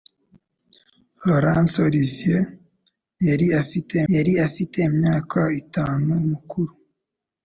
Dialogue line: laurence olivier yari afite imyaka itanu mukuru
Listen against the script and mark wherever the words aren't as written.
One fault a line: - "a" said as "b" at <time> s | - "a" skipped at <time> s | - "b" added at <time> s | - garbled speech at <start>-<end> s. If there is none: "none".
- "yari afite" added at 4.1 s